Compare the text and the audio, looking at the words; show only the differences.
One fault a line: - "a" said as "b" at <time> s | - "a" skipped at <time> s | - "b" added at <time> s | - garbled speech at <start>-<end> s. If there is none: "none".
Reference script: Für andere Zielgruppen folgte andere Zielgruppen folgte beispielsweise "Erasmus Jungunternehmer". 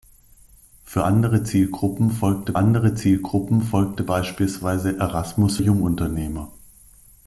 none